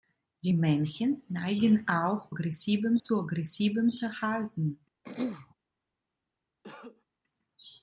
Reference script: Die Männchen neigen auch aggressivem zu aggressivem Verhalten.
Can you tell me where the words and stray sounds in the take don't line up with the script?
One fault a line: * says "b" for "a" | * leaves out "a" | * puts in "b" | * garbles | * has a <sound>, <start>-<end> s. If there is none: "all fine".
* has a throat clearing, 5.0-5.5 s
* has a cough, 6.6-7.1 s